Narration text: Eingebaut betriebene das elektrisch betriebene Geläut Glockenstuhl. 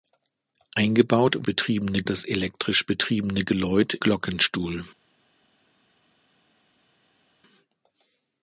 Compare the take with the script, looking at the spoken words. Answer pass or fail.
pass